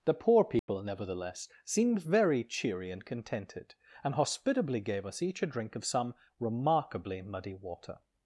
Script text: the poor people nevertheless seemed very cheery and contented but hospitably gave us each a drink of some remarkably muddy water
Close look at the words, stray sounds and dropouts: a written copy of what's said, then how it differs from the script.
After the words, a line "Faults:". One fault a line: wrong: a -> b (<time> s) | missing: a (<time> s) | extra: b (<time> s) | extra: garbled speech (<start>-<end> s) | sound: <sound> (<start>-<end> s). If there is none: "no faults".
the poor people nevertheless seemed very cheery and contented and hospitably gave us each a drink of some remarkably muddy water
Faults:
sound: dropout (0.6-0.7 s)
wrong: but -> and (4.0 s)